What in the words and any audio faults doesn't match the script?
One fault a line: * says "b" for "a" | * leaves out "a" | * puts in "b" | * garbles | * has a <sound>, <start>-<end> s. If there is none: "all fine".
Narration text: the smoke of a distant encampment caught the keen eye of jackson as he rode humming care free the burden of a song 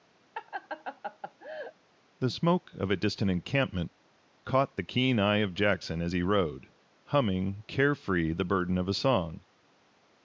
* has a laugh, 0.3-1.7 s